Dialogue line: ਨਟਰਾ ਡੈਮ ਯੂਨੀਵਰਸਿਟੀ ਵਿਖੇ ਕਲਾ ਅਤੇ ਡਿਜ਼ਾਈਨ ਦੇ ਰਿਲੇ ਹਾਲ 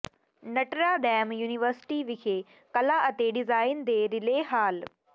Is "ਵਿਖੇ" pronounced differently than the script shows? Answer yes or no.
no